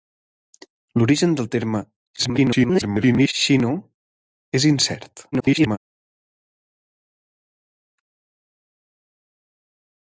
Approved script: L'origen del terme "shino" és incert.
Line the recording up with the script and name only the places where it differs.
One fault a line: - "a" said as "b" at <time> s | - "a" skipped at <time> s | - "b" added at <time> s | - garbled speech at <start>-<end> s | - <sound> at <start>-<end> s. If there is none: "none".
- garbled speech at 2.2-3.3 s
- garbled speech at 5.3-5.8 s